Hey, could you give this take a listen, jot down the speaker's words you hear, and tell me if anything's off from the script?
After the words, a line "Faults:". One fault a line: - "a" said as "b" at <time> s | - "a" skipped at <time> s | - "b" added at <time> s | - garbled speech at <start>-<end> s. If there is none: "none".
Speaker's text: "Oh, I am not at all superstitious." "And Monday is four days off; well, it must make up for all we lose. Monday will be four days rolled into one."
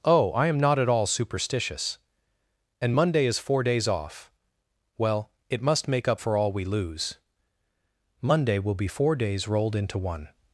"Oh, I am not at all superstitious." "And Monday is four days off; well, it must make up for all we lose. Monday will be four days rolled into one."
Faults:
none